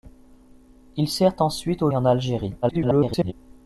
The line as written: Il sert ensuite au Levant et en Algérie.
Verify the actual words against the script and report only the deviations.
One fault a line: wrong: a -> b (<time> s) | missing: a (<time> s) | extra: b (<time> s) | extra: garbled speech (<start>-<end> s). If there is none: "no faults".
missing: Levant (1.9 s)
extra: garbled speech (2.6-3.3 s)